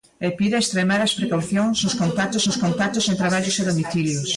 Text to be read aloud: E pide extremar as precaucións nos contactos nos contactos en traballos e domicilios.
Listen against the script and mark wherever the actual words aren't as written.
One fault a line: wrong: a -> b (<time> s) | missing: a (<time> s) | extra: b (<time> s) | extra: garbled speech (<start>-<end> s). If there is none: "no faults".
no faults